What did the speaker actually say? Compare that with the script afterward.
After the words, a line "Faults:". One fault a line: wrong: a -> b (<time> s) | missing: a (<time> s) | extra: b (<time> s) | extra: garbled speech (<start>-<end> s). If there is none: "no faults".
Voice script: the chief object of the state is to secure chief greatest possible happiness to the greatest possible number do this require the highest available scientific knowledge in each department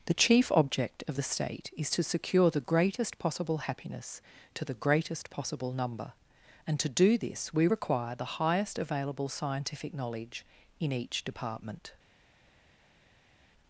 the chief object of the state is to secure the greatest possible happiness to the greatest possible number and to do this we require the highest available scientific knowledge in each department
Faults:
wrong: chief -> the (2.5 s)
extra: and to (6.7 s)
extra: we (7.5 s)